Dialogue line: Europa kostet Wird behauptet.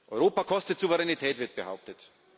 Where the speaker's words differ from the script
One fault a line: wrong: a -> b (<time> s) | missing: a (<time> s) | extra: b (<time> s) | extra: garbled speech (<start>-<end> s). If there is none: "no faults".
extra: Souveränität (0.8 s)